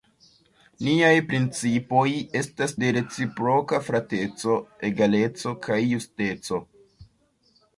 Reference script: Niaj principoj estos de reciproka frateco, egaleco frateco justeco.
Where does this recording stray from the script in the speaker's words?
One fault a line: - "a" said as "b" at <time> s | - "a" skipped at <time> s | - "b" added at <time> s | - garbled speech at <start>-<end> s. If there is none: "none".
- "estos" said as "estas" at 2.4 s
- "frateco" said as "kaj" at 5.7 s